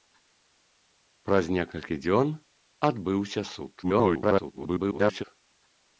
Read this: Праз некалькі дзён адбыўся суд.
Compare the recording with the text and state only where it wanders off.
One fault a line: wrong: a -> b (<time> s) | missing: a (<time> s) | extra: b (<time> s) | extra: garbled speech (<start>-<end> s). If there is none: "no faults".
extra: garbled speech (3.8-5.2 s)